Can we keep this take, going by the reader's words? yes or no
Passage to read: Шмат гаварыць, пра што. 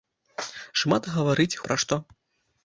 yes